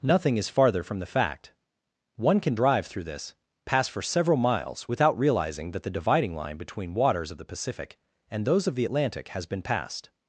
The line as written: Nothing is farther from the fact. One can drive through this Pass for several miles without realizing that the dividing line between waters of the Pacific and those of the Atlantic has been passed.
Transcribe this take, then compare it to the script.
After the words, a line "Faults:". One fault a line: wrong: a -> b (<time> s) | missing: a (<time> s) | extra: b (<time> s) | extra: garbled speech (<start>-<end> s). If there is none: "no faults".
Nothing is farther from the fact. One can drive through this Pass for several miles without realizing that the dividing line between waters of the Pacific and those of the Atlantic has been passed.
Faults:
no faults